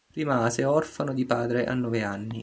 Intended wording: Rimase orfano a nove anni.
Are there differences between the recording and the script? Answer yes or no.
yes